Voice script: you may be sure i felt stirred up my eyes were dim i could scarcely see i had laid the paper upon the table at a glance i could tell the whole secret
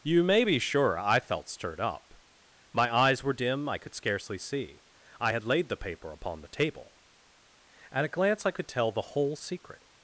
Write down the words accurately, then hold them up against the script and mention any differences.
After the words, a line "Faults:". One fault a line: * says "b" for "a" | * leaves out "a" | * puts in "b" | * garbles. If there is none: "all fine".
you may be sure i felt stirred up my eyes were dim i could scarcely see i had laid the paper upon the table at a glance i could tell the whole secret
Faults:
all fine